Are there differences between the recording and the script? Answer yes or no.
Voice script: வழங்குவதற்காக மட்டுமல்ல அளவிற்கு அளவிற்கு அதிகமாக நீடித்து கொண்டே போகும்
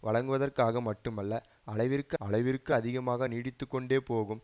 no